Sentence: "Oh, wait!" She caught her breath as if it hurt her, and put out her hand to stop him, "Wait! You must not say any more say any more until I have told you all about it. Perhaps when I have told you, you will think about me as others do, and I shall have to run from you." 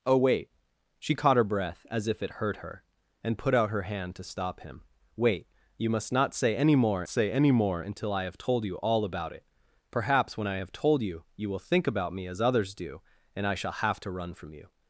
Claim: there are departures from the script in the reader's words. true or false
false